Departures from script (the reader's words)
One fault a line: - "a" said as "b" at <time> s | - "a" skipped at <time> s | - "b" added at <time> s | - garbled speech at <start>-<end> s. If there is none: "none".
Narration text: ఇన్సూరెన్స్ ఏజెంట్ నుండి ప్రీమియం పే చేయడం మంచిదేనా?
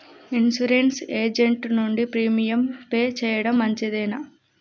none